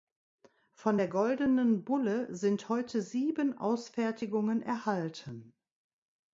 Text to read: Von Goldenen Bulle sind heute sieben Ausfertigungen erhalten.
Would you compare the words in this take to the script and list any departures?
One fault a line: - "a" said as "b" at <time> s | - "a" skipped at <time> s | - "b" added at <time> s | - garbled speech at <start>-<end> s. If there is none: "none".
- "der" added at 0.9 s